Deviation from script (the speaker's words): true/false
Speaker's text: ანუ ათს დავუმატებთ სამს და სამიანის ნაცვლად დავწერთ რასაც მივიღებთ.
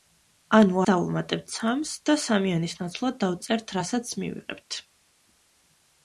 true